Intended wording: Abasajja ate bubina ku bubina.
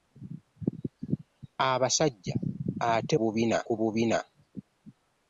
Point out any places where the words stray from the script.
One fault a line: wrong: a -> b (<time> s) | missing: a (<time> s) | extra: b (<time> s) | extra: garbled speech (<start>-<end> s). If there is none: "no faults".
no faults